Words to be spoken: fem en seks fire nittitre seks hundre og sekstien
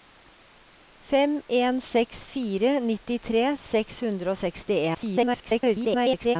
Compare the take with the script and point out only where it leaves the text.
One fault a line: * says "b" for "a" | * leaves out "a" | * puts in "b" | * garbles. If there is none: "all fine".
* garbles